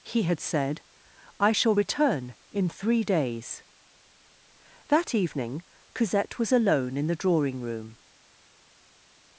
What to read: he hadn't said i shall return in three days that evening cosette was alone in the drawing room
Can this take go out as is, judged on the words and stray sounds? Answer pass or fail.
fail